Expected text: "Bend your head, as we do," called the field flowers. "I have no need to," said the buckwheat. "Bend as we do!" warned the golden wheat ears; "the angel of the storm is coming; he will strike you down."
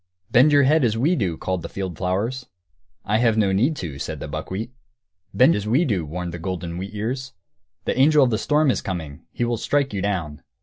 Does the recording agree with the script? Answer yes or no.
yes